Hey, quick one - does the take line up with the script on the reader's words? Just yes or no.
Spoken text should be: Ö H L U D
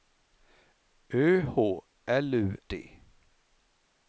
yes